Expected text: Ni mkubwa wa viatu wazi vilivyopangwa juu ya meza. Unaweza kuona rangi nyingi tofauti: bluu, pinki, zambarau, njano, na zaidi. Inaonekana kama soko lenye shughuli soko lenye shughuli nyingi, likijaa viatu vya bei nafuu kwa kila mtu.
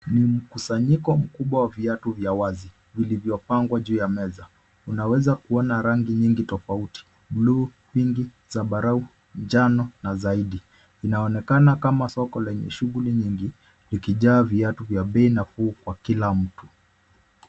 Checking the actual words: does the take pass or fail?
fail